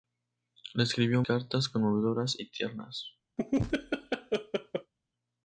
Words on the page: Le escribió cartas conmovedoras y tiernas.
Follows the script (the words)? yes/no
yes